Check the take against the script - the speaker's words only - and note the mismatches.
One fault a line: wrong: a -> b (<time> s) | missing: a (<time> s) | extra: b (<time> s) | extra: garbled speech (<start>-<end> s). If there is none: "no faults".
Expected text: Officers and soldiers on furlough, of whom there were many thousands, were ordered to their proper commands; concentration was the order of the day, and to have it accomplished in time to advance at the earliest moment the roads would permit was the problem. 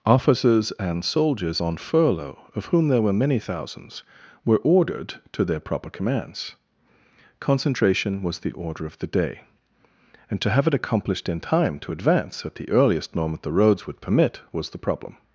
no faults